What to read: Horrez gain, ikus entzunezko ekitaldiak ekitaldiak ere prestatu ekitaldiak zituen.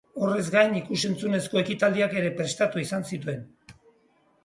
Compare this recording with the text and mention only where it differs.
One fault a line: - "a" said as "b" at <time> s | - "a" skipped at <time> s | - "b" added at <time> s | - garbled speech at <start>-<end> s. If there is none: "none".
- "ekitaldiak" skipped at 2.2 s
- "ekitaldiak" said as "izan" at 2.9 s